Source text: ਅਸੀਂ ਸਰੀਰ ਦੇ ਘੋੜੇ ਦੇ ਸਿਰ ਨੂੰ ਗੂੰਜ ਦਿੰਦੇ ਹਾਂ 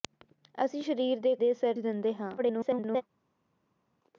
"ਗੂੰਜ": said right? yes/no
no